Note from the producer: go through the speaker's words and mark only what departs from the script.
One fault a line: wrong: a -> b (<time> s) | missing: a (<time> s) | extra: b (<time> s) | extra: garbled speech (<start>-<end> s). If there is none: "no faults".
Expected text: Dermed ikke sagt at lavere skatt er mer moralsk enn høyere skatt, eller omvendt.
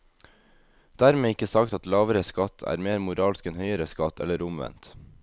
no faults